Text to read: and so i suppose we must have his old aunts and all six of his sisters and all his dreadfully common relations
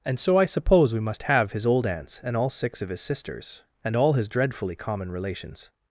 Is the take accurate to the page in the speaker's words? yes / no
yes